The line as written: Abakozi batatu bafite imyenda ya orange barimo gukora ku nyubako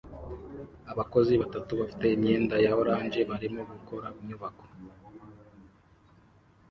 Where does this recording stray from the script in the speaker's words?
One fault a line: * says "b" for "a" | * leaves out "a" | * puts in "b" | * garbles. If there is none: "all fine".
* leaves out "ku"